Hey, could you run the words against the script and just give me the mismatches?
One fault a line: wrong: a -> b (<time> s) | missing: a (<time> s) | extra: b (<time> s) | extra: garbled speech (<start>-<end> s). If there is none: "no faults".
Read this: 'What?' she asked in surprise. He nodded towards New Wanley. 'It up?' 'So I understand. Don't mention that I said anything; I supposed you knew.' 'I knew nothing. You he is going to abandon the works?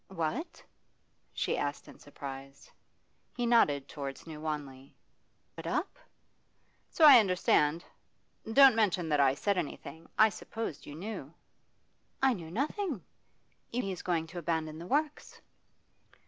no faults